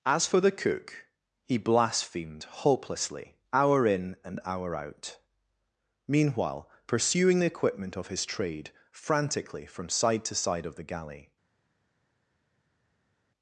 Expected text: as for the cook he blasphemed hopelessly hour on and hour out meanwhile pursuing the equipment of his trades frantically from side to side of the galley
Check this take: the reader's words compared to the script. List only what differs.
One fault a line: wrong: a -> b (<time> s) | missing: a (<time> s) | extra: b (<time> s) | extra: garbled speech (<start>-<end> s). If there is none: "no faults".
wrong: on -> in (3.9 s)
wrong: trades -> trade (8.2 s)